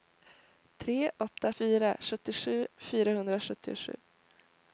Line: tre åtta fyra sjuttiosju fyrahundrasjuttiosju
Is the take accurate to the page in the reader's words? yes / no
yes